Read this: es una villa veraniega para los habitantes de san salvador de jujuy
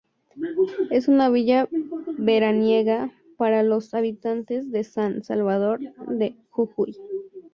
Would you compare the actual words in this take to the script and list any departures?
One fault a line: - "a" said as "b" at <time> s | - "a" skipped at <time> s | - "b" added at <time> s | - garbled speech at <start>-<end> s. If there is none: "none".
none